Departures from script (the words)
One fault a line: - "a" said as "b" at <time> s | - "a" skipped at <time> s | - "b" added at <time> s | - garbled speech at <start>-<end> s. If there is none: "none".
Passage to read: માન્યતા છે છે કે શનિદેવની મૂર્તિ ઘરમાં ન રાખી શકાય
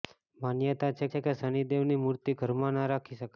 none